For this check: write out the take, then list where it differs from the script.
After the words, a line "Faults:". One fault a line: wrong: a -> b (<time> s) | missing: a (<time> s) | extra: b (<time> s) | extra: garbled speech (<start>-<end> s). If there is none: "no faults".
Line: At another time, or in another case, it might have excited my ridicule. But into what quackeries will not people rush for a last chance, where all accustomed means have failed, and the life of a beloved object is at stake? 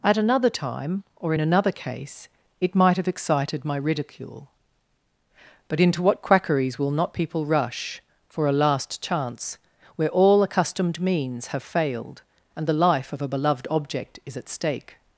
At another time, or in another case, it might have excited my ridicule. But into what quackeries will not people rush for a last chance, where all accustomed means have failed, and the life of a beloved object is at stake?
Faults:
no faults